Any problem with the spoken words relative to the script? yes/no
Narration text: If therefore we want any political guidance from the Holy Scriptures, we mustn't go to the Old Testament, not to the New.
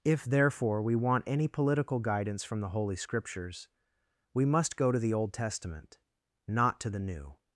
yes